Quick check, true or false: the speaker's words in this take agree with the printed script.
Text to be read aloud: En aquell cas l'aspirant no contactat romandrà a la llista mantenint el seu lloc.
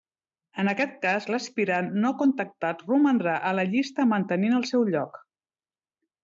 false